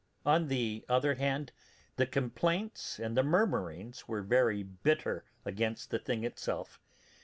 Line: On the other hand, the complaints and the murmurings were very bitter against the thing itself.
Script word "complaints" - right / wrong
right